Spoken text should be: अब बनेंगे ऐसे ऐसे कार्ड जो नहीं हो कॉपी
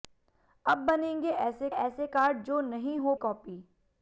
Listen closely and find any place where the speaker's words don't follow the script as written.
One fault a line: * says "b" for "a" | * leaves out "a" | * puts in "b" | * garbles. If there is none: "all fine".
all fine